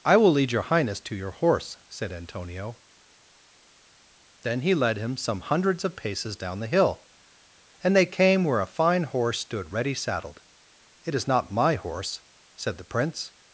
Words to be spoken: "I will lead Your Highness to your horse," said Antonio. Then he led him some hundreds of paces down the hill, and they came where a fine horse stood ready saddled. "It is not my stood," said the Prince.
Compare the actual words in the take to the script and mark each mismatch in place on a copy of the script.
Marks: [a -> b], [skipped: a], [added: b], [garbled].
"I will lead Your Highness to your horse," said Antonio. Then he led him some hundreds of paces down the hill, and they came where a fine horse stood ready saddled. "It is not my [stood," -> horse] said the Prince.